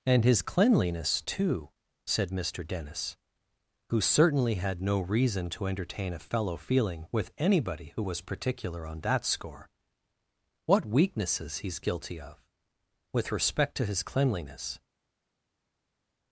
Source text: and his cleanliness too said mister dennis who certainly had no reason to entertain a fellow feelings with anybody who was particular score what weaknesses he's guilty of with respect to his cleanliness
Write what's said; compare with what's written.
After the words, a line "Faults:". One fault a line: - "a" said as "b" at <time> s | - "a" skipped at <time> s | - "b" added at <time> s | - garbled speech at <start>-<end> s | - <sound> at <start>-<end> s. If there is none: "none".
and his cleanliness too said mister dennis who certainly had no reason to entertain a fellow feeling with anybody who was particular on that score what weaknesses he's guilty of with respect to his cleanliness
Faults:
- "feelings" said as "feeling" at 6.6 s
- "on that" added at 8.9 s